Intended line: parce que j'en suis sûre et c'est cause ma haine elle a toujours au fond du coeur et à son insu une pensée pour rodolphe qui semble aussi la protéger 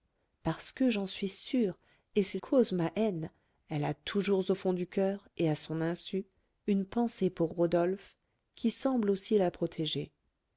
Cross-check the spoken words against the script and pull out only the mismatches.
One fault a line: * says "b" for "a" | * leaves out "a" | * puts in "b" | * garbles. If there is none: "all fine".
all fine